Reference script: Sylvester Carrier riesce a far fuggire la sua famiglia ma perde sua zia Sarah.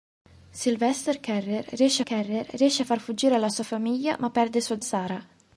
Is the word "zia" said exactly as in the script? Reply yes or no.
no